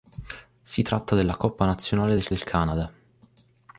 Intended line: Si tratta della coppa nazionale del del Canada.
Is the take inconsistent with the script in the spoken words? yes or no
no